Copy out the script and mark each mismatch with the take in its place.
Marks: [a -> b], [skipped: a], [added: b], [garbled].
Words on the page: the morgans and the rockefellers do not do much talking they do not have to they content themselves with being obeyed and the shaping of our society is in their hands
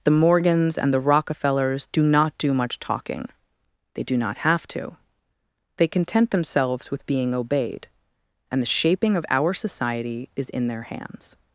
the morgans and the rockefellers do not do much talking they do not have to they content themselves with being obeyed and the shaping of our society is in their hands